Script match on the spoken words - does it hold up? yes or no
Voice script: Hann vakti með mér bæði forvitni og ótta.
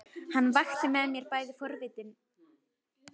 yes